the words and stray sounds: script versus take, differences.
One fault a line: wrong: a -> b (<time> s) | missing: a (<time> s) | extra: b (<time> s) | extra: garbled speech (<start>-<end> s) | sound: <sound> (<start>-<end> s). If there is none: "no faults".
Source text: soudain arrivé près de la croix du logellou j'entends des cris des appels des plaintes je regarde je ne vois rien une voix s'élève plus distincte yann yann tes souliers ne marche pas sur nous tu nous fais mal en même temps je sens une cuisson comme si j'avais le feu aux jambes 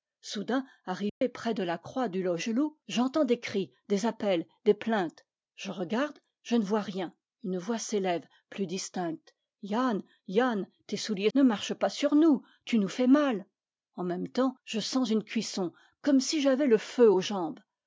sound: dropout (1.1-1.2 s)